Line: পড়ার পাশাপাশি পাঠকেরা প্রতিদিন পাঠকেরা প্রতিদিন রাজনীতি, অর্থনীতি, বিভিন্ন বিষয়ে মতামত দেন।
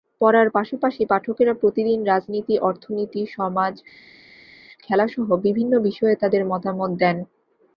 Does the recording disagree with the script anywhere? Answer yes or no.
yes